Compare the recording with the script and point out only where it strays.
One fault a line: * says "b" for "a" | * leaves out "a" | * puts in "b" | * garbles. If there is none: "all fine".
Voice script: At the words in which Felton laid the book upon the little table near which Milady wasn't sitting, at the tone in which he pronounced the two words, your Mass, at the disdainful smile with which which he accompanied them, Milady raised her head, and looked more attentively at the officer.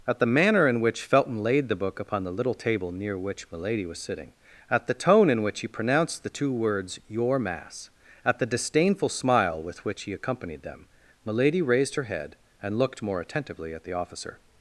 * says "manner" for "words"
* says "was" for "wasn't"
* leaves out "which"